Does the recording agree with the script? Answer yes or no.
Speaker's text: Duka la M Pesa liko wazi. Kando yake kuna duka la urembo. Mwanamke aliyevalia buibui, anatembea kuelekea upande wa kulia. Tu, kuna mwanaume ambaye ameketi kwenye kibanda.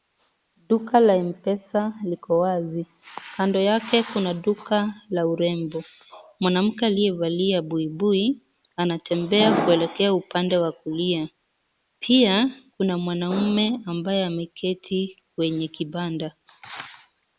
no